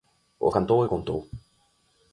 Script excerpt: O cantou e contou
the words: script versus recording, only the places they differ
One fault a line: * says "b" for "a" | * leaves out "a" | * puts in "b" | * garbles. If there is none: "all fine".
all fine